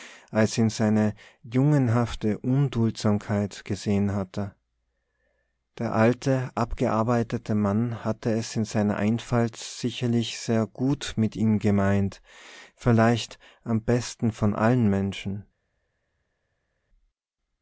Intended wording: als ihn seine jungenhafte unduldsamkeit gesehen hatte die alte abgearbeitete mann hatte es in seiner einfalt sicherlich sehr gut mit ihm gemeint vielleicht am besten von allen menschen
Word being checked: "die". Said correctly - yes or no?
no